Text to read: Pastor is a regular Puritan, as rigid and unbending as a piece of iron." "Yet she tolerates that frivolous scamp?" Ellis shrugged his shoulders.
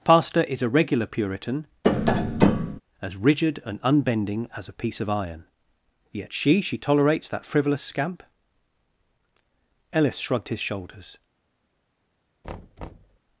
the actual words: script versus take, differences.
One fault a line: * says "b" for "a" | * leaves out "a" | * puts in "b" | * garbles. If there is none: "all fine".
* puts in "she"